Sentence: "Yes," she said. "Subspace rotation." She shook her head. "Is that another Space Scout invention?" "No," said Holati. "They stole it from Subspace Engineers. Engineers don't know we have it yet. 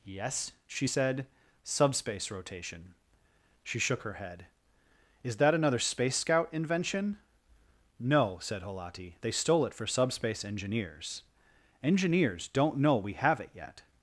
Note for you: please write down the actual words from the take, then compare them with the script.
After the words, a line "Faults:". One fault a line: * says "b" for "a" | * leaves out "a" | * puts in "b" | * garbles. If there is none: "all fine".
"Yes," she said. "Subspace rotation." She shook her head. "Is that another Space Scout invention?" "No," said Holati. "They stole it for Subspace Engineers. Engineers don't know we have it yet.
Faults:
* says "for" for "from"